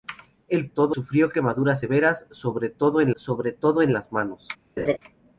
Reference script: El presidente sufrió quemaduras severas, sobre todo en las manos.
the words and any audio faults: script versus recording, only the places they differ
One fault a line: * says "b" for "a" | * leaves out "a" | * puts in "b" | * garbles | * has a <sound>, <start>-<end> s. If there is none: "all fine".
* says "todo" for "presidente"
* puts in "sobre todo en"
* has a laugh, 4.8-5.0 s